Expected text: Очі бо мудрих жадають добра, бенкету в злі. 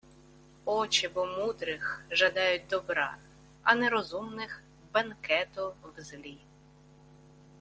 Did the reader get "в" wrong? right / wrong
right